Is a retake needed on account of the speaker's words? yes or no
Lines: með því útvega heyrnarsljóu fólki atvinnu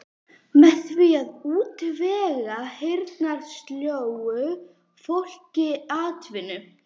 yes